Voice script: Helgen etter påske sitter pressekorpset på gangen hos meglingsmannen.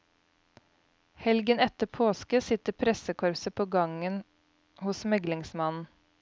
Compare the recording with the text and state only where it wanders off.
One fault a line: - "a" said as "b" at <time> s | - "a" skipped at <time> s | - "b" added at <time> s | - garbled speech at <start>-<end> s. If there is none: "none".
none